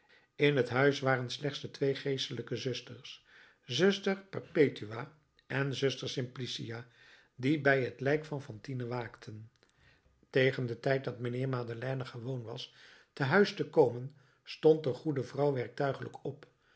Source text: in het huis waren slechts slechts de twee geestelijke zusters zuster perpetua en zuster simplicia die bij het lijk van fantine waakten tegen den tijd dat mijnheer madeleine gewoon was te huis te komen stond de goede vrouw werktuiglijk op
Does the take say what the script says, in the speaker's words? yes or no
no